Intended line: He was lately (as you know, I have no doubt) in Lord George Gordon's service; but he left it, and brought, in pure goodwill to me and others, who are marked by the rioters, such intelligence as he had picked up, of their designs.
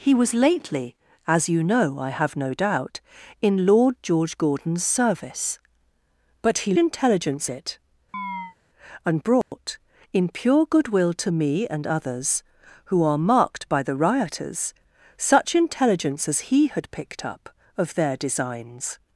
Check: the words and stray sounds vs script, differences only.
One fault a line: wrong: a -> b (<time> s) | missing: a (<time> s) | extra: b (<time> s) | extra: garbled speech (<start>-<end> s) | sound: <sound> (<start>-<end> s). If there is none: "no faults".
wrong: left -> intelligence (6.8 s)
sound: chirp (8.1-8.6 s)
sound: dropout (9.4-9.5 s)